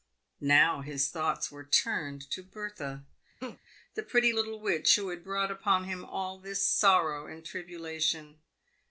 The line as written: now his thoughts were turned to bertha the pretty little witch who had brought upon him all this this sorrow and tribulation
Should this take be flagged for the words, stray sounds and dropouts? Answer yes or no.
yes